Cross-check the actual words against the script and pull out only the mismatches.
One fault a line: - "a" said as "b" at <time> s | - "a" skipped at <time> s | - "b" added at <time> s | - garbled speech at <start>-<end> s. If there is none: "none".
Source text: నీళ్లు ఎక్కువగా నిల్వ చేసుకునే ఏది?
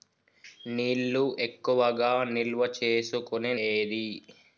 none